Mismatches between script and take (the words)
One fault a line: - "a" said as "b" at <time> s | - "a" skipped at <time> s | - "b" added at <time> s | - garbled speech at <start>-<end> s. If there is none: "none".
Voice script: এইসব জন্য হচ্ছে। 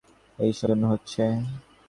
none